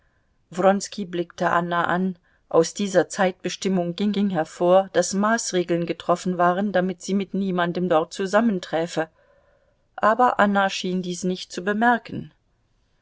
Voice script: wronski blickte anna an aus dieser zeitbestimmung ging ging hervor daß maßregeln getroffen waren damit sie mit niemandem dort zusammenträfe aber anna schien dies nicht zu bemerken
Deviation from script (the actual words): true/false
false